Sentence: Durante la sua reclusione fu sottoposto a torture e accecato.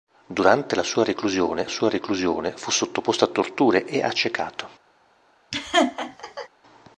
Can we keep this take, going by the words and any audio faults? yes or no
no